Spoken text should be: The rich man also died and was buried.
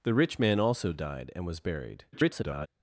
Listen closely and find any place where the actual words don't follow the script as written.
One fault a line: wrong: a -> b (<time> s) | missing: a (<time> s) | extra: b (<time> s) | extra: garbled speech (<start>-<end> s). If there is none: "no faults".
extra: garbled speech (2.1-2.7 s)